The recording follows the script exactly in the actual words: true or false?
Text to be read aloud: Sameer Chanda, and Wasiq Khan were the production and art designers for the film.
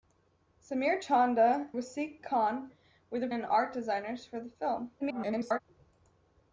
false